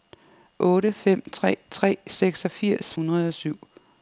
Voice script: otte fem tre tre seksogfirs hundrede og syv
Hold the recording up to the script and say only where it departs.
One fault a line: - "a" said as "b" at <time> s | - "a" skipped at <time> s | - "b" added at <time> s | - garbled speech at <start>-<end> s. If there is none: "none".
none